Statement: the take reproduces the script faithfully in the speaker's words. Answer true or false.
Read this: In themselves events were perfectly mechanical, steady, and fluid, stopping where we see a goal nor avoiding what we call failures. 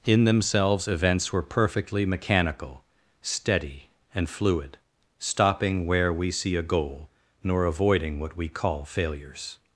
true